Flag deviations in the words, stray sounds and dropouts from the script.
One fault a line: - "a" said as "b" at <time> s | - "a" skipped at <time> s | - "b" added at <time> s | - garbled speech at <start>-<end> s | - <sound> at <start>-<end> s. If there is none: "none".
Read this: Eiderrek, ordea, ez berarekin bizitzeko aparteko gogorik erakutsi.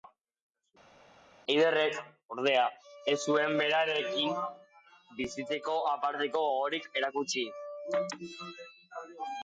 - "zuen" added at 3.3 s